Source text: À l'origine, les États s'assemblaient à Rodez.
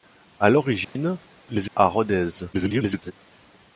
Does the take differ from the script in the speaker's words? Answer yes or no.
yes